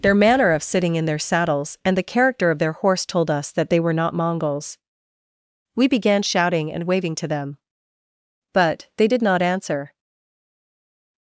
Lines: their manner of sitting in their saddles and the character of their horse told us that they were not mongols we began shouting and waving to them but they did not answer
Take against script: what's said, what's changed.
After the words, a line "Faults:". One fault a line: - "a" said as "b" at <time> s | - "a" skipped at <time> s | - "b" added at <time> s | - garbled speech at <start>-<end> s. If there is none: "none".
their manner of sitting in their saddles and the character of their horse told us that they were not mongols we began shouting and waving to them but they did not answer
Faults:
none